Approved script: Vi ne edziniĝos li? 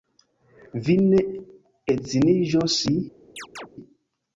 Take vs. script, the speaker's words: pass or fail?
pass